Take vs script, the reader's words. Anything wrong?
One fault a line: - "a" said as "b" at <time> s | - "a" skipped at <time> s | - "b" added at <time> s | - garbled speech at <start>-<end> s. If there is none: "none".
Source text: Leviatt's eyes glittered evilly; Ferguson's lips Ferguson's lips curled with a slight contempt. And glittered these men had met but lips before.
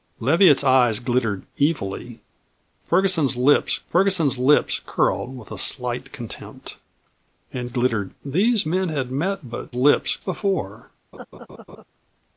none